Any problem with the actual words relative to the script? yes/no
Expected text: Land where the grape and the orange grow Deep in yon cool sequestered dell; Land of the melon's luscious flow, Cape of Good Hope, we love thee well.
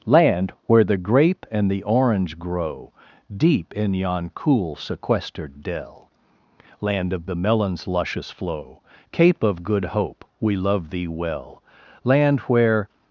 yes